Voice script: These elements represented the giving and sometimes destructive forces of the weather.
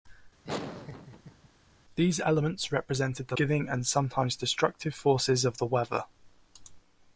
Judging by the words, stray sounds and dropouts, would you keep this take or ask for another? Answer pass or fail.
fail